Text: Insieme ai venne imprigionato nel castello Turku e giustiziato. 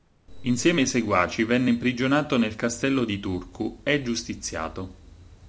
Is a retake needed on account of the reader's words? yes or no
yes